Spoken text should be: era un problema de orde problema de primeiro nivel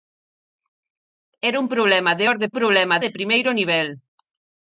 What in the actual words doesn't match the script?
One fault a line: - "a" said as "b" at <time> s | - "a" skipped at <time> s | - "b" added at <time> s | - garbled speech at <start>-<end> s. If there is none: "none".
none